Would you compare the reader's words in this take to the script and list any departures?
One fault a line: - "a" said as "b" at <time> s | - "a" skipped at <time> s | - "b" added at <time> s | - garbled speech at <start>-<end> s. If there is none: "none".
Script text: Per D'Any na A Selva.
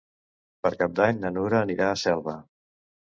- "Cap" added at 0.8 s
- "Nura anirà" added at 1.4 s